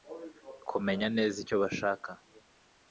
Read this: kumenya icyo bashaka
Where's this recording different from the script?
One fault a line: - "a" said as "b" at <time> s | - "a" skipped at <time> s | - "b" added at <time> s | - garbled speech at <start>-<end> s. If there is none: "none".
- "neza" added at 1.2 s